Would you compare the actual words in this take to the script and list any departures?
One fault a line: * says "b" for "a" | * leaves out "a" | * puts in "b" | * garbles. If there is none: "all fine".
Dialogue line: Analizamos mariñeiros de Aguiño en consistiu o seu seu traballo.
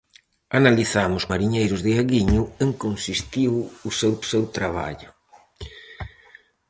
all fine